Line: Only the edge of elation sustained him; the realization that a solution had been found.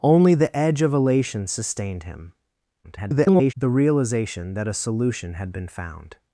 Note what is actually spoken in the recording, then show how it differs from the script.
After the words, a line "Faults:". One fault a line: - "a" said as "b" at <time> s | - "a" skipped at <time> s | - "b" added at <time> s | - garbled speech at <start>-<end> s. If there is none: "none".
Only the edge of elation sustained him; [garbled] the realization that a solution had been found.
Faults:
- garbled speech at 2.8-3.5 s